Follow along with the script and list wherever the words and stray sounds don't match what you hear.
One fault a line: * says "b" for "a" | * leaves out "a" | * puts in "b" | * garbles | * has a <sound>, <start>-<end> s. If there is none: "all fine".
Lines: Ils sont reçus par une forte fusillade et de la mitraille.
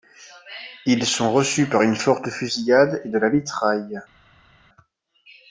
all fine